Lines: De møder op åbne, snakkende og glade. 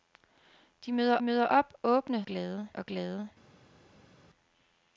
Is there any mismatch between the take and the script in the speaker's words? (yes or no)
yes